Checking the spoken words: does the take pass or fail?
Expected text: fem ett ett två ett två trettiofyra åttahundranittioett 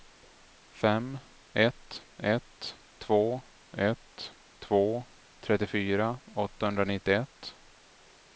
pass